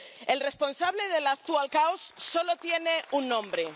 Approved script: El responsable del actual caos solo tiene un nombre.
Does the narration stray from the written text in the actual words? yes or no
no